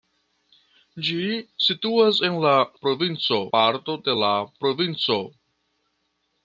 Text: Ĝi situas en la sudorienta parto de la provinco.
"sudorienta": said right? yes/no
no